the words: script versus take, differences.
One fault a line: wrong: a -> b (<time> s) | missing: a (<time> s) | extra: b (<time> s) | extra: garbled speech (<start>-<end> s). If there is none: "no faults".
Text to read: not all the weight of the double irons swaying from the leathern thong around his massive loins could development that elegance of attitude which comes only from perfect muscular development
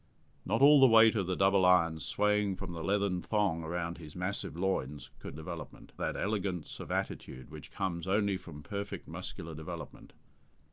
no faults